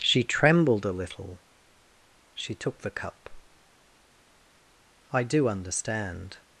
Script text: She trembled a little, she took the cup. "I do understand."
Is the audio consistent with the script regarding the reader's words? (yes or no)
yes